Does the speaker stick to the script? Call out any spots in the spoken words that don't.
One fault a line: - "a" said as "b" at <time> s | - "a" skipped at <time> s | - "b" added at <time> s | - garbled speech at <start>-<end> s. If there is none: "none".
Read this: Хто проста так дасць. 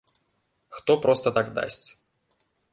none